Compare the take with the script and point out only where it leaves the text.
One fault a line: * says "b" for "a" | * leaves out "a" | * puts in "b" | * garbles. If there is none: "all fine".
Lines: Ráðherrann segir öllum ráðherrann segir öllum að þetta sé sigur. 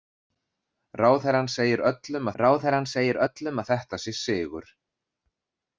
all fine